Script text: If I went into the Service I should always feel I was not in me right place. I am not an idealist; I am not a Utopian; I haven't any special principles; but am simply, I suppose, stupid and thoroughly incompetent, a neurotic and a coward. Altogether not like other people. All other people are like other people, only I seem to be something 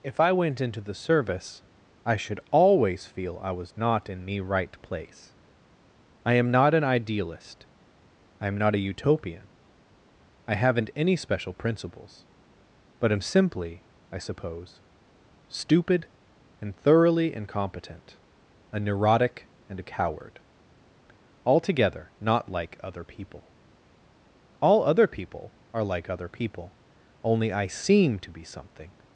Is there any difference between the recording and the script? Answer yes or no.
no